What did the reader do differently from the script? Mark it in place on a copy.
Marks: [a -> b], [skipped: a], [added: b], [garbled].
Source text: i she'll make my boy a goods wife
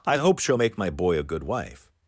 i [added: hope] she'll make my boy a [goods -> good] wife